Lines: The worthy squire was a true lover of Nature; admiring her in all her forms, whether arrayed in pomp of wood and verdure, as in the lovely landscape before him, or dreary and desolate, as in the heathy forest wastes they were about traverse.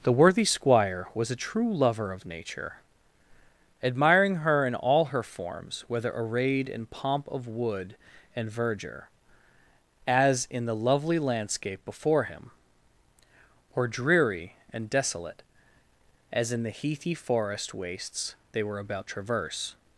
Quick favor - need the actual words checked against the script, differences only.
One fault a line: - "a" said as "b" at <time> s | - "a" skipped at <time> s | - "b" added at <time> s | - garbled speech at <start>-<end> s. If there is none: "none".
none